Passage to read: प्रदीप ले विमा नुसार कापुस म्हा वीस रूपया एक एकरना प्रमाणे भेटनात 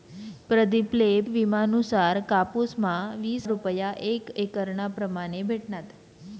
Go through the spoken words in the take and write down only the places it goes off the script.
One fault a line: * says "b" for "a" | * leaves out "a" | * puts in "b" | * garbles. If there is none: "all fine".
all fine